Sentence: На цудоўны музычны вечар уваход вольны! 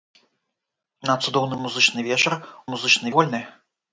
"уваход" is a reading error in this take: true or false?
true